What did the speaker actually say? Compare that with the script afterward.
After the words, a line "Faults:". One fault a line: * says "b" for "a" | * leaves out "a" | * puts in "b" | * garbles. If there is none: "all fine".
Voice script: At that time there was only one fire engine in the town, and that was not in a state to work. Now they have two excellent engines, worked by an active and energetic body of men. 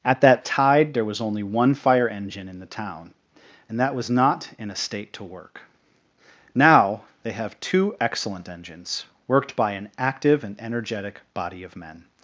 At that tide there was only one fire engine in the town, and that was not in a state to work. Now they have two excellent engines, worked by an active and energetic body of men.
Faults:
* says "tide" for "time"